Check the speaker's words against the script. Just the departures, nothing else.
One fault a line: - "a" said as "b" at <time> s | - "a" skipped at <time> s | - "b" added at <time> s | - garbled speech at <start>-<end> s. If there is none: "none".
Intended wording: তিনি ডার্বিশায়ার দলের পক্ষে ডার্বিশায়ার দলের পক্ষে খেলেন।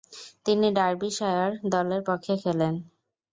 - "ডার্বিশায়ার দলের পক্ষে" skipped at 2.3 s